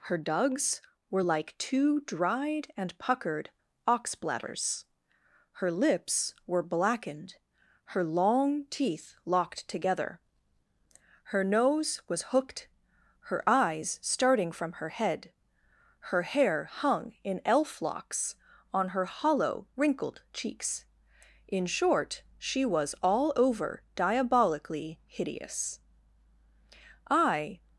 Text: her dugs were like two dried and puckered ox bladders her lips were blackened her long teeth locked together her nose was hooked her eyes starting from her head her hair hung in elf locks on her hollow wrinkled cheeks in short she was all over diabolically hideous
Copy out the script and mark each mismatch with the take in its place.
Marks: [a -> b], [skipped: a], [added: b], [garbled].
her dugs were like two dried and puckered ox bladders her lips were blackened her long teeth locked together her nose was hooked her eyes starting from her head her hair hung in elf locks on her hollow wrinkled cheeks in short she was all over diabolically hideous [added: i]